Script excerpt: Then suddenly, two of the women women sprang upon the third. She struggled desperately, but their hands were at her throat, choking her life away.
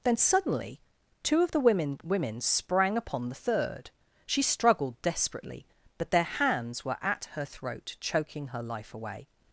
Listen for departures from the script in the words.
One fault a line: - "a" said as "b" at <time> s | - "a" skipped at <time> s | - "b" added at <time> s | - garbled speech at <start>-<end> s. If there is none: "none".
none